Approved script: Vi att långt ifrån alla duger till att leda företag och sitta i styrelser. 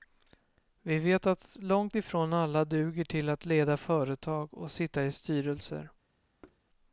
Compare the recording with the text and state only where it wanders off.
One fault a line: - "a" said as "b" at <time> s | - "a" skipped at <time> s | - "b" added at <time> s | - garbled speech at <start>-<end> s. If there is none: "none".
- "vet" added at 1.0 s